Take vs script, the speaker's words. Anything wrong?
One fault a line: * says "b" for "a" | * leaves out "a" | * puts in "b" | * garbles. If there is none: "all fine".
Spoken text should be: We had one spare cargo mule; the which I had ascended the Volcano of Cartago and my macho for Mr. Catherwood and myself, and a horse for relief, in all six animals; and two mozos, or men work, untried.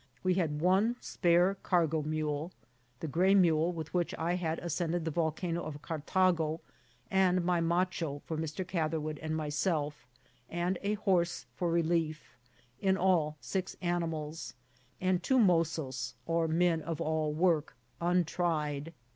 * puts in "gray mule with"
* puts in "of all"